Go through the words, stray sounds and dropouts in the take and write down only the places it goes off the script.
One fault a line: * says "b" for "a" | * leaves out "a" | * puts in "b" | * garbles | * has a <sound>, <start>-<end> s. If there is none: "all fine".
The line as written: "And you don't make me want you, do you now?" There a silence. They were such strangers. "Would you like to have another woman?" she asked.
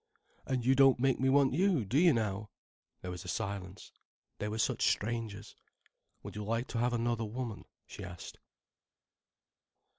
* puts in "was"